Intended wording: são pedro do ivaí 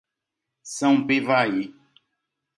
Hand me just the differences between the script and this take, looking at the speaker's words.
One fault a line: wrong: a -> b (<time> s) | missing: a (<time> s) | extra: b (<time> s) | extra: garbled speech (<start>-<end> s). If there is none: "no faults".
missing: pedro do (1.1 s)